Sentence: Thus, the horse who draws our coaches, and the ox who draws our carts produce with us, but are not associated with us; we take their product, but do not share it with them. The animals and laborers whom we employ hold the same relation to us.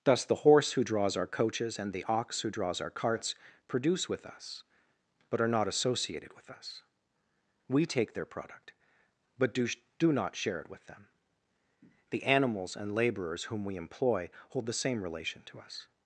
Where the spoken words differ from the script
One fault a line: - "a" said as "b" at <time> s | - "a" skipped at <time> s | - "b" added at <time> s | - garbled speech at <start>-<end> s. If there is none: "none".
- "do" added at 10.0 s